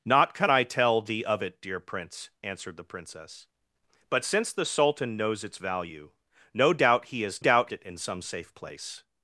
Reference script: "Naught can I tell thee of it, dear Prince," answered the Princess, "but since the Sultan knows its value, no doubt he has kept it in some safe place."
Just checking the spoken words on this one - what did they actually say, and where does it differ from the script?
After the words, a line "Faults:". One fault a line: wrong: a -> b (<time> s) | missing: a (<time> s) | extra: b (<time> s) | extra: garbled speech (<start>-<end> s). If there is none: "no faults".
"Naught can I tell thee of it, dear Prince," answered the Princess, "but since the Sultan knows its value, no doubt he has doubt it in some safe place."
Faults:
wrong: kept -> doubt (7.4 s)